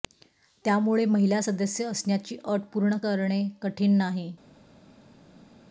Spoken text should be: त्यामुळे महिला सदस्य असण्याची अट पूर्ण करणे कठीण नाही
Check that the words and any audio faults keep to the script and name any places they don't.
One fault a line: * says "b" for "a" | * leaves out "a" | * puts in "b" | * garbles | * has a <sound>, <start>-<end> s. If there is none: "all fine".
all fine